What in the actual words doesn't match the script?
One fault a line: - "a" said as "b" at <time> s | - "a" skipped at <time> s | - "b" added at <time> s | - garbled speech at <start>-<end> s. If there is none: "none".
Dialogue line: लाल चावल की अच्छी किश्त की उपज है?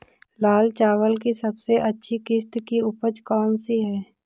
- "सबसे" added at 1.3 s
- "कौन सी" added at 3.2 s